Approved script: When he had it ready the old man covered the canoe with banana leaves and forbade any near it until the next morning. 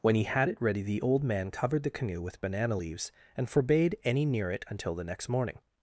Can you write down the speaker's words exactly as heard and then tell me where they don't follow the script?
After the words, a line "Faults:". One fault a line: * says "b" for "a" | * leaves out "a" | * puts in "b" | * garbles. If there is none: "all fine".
When he had it ready the old man covered the canoe with banana leaves and forbade any near it until the next morning.
Faults:
all fine